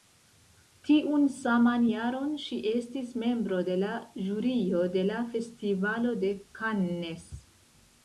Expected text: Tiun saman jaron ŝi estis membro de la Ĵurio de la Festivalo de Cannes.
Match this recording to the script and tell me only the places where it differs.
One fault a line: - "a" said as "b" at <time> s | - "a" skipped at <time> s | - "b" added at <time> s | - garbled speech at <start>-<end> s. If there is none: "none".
none